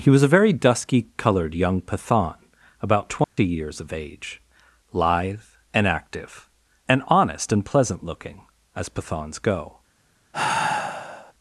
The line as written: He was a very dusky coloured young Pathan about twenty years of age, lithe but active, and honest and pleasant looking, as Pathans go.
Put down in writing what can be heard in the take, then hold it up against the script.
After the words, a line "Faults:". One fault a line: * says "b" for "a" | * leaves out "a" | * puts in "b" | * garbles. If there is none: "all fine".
He was a very dusky coloured young Pathan about twenty years of age, lithe and active, and honest and pleasant looking, as Pathans go.
Faults:
* says "and" for "but"